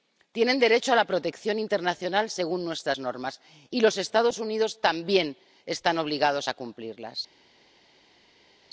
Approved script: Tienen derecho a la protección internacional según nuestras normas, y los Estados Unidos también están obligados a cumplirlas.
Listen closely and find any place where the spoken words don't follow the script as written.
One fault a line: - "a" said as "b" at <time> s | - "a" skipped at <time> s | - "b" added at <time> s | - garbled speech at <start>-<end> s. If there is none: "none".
none